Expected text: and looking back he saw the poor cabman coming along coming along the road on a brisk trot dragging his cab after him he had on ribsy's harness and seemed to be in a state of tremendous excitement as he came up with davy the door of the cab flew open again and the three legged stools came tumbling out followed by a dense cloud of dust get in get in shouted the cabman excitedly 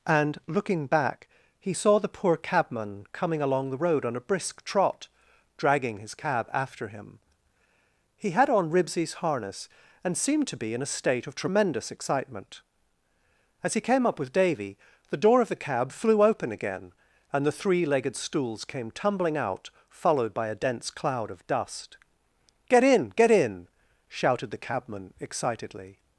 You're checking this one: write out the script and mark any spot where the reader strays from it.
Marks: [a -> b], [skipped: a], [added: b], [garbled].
and looking back he saw the poor cabman coming along [skipped: coming along] the road on a brisk trot dragging his cab after him he had on ribsy's harness and seemed to be in a state of tremendous excitement as he came up with davy the door of the cab flew open again and the three legged stools came tumbling out followed by a dense cloud of dust get in get in shouted the cabman excitedly